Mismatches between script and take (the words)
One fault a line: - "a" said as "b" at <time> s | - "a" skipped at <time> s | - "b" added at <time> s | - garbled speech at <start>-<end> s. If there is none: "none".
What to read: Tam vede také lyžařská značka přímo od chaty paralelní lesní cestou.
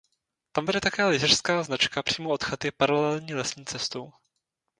none